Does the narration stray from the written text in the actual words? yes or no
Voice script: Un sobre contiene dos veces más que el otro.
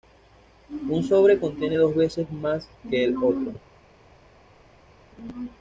no